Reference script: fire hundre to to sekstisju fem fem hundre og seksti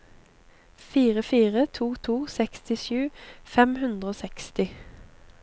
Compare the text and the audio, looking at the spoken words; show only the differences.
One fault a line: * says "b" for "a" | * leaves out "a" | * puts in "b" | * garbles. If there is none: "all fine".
* says "fire" for "hundre"
* leaves out "fem"